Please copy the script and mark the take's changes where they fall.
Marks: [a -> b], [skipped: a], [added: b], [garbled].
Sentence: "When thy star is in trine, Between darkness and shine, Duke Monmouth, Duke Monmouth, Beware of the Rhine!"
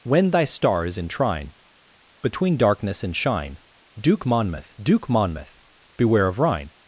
"When thy star is in trine, Between darkness and shine, Duke Monmouth, Duke Monmouth, Beware of [skipped: the] Rhine!"